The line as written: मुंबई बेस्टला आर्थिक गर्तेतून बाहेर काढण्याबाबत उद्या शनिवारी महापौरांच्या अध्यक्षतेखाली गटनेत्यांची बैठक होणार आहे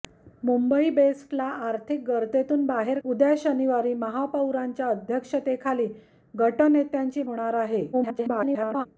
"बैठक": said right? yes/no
no